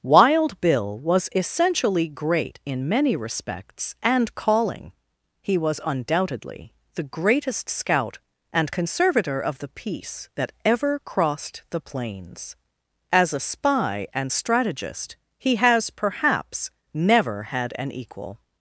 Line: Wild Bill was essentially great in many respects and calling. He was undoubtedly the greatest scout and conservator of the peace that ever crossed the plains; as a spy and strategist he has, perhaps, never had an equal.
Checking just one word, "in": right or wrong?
right